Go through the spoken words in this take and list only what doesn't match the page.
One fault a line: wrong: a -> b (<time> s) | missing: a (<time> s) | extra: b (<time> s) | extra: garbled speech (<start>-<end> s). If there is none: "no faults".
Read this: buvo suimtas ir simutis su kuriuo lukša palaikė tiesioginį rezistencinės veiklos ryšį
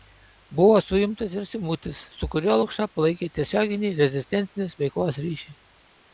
no faults